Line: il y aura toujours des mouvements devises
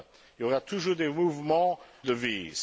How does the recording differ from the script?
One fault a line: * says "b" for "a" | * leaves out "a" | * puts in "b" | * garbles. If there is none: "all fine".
all fine